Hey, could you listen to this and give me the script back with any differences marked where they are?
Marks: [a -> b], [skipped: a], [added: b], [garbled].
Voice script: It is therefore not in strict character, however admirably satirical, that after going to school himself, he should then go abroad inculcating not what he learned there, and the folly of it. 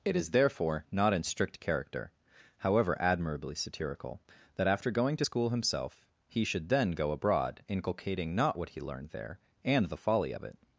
It is therefore not in strict character, however admirably satirical, that after going to school himself, he should then go abroad inculcating not what he learned there, and the folly of it.